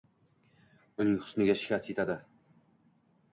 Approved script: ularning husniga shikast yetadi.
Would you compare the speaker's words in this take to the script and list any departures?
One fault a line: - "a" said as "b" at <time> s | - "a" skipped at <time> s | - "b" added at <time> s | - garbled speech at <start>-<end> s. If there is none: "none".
- "ularning" said as "uning" at 1.0 s